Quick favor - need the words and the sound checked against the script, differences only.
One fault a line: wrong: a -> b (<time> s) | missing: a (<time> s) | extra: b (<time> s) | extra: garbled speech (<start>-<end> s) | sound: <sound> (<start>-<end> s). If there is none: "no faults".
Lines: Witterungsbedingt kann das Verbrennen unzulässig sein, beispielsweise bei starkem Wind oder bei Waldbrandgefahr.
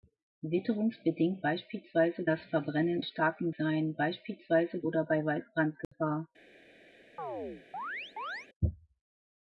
wrong: kann -> beispielsweise (1.4 s)
wrong: unzulässig -> starkem (3.0 s)
missing: bei starkem Wind (4.8 s)
sound: dropout (5.8-5.9 s)
sound: chirp (7.2-8.5 s)